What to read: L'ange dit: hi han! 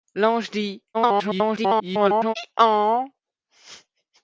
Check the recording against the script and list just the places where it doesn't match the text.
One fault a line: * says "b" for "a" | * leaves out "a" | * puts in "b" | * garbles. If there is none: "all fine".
* garbles